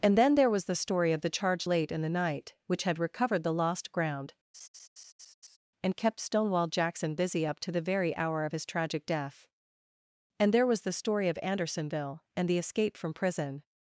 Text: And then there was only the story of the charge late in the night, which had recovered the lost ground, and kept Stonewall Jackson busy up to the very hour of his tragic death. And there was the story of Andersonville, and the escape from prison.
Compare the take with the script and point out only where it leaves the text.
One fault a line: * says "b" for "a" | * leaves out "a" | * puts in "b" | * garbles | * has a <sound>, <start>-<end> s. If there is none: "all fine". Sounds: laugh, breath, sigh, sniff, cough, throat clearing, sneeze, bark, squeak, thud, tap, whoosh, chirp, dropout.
* leaves out "only"
* has a laugh, 4.5-5.6 s